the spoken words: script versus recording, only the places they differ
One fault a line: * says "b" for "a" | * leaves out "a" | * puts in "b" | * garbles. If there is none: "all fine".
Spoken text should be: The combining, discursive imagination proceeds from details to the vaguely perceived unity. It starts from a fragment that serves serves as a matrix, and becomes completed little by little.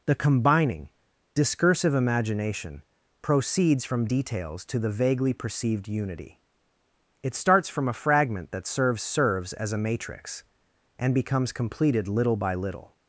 all fine